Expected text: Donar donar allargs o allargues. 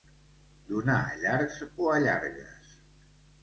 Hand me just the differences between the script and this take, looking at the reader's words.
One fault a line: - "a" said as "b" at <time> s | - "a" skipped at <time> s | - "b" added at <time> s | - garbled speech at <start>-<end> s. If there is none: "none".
- "donar" skipped at 0.9 s